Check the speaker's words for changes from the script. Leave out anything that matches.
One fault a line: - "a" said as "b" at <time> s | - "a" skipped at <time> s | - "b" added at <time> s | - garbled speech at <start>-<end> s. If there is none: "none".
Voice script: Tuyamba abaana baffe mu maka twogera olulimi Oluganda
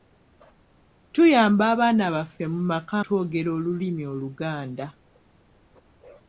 none